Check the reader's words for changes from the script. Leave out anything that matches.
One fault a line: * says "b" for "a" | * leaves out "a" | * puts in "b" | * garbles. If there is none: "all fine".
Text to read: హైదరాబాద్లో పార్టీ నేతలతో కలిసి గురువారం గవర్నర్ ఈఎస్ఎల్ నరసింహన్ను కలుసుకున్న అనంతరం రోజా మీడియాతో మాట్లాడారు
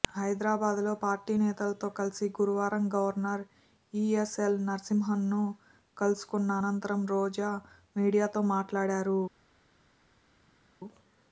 all fine